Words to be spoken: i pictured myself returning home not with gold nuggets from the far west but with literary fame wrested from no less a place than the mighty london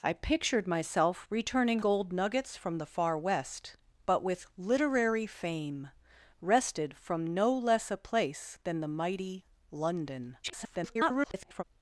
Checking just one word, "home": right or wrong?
wrong